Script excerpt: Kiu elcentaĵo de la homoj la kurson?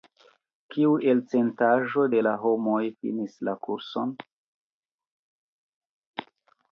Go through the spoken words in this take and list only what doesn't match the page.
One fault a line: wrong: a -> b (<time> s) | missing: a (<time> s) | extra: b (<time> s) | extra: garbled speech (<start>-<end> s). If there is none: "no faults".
extra: finis (3.0 s)